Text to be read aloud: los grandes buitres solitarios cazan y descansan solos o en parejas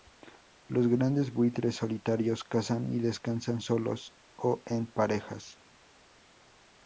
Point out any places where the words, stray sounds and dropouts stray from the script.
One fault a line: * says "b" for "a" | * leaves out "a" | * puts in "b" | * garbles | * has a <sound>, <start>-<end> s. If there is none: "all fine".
all fine